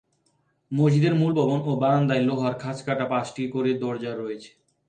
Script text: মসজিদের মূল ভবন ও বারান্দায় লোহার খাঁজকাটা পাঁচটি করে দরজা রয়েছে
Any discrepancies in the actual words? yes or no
no